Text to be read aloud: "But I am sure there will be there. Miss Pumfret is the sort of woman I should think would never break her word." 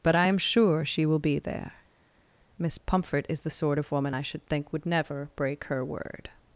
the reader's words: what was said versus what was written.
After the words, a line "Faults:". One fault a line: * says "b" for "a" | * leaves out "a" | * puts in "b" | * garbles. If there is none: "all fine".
"But I am sure she will be there. Miss Pumfret is the sort of woman I should think would never break her word."
Faults:
* says "she" for "there"